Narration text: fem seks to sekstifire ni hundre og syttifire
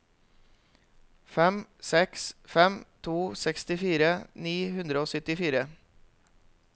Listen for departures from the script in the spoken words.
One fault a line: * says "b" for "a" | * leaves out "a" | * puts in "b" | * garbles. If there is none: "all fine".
* puts in "fem"